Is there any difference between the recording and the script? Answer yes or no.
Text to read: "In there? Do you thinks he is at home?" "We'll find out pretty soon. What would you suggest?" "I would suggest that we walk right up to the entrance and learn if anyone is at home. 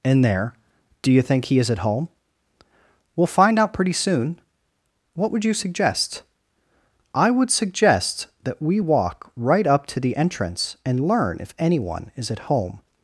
yes